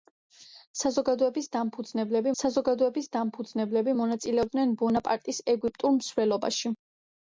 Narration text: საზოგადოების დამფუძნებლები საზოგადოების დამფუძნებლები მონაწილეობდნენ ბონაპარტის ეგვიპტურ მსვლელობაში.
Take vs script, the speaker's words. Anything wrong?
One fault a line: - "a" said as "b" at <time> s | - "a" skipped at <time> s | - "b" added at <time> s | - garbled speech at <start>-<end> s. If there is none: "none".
none